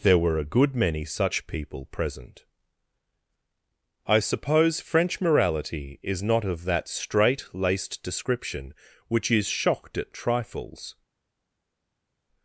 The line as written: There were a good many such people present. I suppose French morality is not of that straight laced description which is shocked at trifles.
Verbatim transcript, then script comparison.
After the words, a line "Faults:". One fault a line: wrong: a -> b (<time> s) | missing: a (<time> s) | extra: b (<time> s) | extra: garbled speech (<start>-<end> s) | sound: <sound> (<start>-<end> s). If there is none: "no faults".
There were a good many such people present. I suppose French morality is not of that straight laced description which is shocked at trifles.
Faults:
no faults